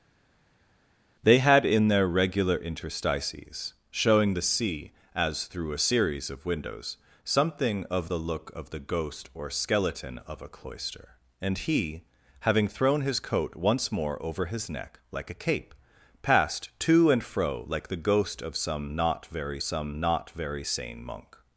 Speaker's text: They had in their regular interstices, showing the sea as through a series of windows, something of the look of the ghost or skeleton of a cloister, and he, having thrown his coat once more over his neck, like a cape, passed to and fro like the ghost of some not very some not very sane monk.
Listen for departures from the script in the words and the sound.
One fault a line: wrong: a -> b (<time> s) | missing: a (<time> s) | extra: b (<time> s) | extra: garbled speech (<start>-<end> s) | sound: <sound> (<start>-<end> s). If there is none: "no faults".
no faults